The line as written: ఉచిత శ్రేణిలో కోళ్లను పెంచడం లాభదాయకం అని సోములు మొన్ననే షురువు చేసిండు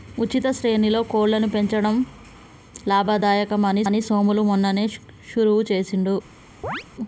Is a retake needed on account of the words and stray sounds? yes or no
yes